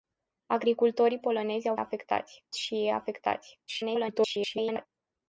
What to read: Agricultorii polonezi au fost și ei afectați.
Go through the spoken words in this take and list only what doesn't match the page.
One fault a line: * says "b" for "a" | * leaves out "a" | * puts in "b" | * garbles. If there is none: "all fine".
* says "afectați" for "fost"
* garbles